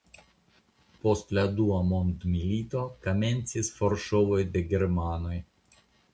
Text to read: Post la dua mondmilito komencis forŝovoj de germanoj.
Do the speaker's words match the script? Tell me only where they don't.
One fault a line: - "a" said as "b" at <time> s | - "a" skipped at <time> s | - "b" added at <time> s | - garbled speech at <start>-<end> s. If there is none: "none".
none